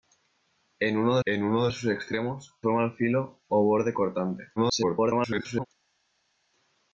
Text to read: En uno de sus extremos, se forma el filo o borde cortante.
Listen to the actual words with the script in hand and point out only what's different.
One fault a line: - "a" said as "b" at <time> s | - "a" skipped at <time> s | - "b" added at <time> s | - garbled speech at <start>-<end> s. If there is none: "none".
- "en uno" added at 1.2 s
- "se" skipped at 2.5 s
- garbled speech at 4.6-5.7 s